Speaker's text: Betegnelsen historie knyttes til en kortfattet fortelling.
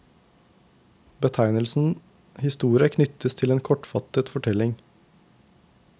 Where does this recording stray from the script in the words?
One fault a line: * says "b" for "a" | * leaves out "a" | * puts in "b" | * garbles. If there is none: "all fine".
all fine